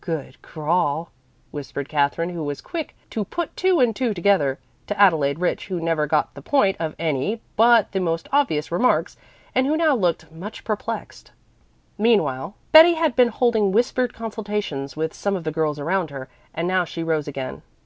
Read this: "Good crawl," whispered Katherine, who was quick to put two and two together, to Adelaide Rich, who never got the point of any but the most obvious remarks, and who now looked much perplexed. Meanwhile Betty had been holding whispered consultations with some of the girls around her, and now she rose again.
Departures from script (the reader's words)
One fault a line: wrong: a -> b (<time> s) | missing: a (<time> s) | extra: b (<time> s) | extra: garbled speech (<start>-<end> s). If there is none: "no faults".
no faults